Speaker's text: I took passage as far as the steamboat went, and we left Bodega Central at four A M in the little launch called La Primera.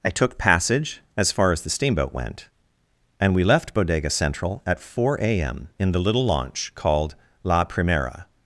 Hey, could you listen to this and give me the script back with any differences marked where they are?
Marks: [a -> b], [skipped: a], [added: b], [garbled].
I took passage as far as the steamboat went, and we left Bodega Central at four A M in the little launch called La Primera.